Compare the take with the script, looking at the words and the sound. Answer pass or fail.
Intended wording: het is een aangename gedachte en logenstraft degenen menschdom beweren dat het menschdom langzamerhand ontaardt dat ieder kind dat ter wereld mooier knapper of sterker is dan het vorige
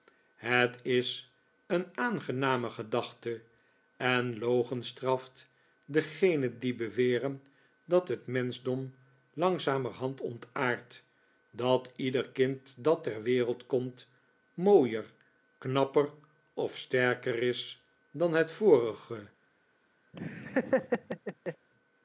fail